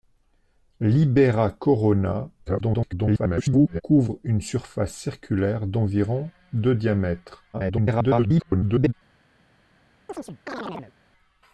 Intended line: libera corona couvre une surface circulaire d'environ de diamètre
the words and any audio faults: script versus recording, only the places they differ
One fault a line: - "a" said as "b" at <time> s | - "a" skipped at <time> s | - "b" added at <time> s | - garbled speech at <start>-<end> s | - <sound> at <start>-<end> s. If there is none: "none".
- garbled speech at 2.5-3.8 s
- garbled speech at 7.5-8.9 s
- chirp at 10.1-10.9 s